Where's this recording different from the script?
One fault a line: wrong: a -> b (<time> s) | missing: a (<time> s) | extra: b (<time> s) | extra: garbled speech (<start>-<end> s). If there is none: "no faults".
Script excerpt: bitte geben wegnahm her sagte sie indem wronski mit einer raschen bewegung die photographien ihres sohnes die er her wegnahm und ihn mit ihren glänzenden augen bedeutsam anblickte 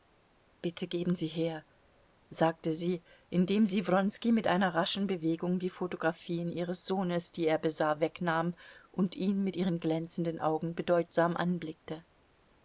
wrong: wegnahm -> sie (1.1 s)
extra: sie (3.7 s)
wrong: her -> besah (7.6 s)